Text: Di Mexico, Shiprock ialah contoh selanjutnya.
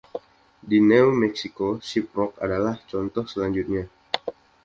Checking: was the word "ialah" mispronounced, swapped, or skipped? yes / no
yes